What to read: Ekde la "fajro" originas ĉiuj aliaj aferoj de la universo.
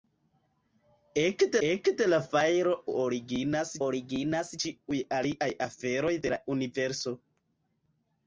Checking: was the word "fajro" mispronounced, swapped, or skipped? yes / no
no